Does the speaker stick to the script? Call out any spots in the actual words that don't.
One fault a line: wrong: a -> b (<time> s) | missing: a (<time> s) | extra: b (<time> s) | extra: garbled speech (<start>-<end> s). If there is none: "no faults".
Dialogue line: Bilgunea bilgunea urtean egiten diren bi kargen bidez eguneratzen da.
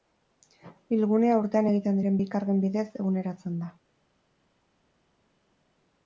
missing: bilgunea (1.4 s)